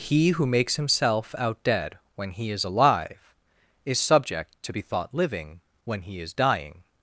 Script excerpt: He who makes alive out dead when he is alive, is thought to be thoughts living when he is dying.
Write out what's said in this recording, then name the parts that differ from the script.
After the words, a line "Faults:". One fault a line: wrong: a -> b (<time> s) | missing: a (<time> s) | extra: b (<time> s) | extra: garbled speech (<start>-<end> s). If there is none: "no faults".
He who makes himself out dead when he is alive, is subject to be thought living when he is dying.
Faults:
wrong: alive -> himself (0.8 s)
wrong: thought -> subject (4.0 s)
wrong: thoughts -> thought (4.8 s)